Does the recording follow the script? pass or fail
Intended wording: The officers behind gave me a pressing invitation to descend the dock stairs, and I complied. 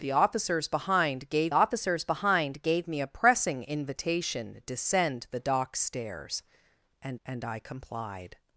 fail